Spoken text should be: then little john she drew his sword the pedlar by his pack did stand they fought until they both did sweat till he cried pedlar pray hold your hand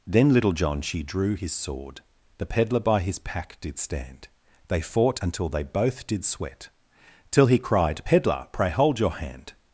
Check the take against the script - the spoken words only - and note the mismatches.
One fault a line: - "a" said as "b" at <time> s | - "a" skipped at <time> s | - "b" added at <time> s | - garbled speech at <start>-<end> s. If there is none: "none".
none